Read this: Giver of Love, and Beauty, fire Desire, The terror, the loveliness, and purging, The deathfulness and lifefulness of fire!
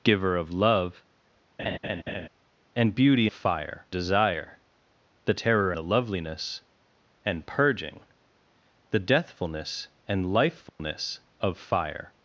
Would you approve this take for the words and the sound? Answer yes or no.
no